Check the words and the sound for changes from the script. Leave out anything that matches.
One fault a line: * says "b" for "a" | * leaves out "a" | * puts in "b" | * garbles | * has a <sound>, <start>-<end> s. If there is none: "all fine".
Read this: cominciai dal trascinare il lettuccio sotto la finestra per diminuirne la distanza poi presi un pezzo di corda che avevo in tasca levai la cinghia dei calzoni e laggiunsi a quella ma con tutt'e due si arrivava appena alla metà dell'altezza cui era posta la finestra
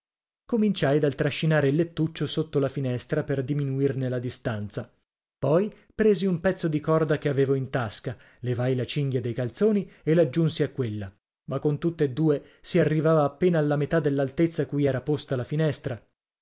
all fine